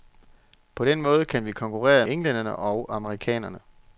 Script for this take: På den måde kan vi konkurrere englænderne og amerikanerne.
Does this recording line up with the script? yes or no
yes